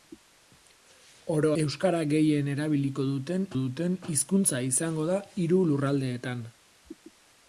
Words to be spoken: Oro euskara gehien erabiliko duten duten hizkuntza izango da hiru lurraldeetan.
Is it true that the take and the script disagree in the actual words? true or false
false